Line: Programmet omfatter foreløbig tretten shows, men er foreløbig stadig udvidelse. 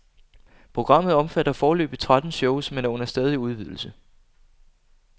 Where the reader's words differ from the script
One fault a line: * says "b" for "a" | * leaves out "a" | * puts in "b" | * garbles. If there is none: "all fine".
* says "under" for "foreløbig"